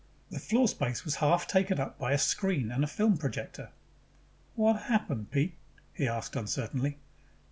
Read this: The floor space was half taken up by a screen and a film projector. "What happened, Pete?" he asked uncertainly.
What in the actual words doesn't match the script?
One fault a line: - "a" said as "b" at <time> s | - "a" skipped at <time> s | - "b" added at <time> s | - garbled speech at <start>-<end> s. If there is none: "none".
none